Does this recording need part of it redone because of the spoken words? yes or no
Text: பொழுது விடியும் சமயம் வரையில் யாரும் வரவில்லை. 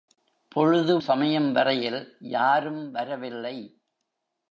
yes